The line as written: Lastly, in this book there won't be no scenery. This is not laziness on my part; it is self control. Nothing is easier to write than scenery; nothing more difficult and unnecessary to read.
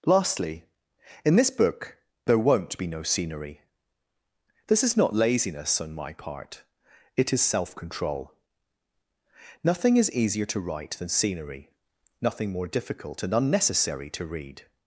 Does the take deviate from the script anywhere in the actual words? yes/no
no